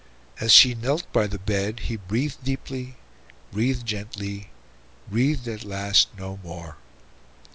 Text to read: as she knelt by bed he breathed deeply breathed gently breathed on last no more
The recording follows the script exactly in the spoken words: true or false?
false